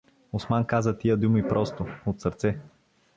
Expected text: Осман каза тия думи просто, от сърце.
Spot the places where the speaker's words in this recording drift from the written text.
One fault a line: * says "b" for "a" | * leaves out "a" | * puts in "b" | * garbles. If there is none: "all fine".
all fine